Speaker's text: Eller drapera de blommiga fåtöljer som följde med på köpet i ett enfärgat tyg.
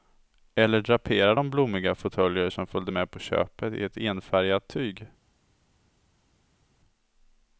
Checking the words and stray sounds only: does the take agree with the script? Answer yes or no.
yes